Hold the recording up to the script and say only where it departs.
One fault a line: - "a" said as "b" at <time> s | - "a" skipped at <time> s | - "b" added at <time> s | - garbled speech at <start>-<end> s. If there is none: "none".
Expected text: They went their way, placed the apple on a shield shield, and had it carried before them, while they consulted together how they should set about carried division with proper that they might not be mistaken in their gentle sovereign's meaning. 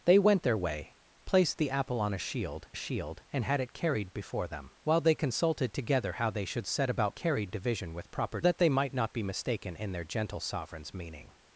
none